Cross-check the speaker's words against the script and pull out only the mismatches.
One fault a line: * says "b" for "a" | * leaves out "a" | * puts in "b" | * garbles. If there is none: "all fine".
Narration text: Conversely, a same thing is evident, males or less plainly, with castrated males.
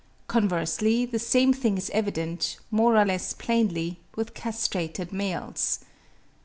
* says "the" for "a"
* says "more" for "males"